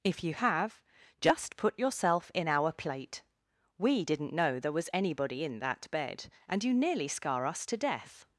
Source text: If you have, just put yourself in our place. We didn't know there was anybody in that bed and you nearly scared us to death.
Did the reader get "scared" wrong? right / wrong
wrong